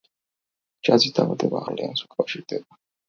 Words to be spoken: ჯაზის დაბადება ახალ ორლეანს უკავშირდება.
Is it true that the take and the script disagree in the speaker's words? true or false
true